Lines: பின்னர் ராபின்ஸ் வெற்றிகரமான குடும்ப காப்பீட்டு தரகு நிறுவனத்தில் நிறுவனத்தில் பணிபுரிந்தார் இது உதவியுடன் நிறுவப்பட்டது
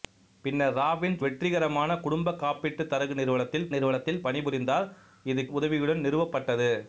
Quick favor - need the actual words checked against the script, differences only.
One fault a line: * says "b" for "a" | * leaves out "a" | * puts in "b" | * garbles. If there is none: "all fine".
all fine